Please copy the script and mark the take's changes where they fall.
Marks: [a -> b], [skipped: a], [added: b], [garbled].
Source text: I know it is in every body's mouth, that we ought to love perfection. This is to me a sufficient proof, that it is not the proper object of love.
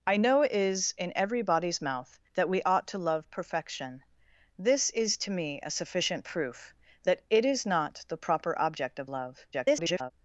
I know it is in every body's mouth, that we ought to love perfection. This is to me a sufficient proof, that it is not the proper object of love. [garbled]